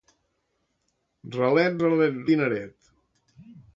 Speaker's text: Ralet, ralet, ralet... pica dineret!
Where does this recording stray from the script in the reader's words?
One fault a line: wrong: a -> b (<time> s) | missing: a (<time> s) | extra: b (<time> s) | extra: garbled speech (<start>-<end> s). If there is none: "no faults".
missing: ralet pica (2.2 s)